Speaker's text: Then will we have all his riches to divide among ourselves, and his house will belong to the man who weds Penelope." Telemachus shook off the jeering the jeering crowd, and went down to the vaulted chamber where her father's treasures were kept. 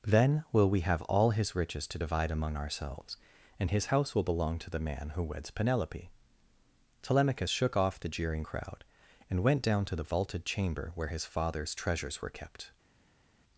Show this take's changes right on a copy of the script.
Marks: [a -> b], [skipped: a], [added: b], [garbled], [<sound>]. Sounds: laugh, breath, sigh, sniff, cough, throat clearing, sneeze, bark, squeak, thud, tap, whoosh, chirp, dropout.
Then will we have all his riches to divide among ourselves, and his house will belong to the man who weds Penelope." Telemachus shook off the jeering [skipped: the jeering] crowd, and went down to the vaulted chamber where [her -> his] father's treasures were kept.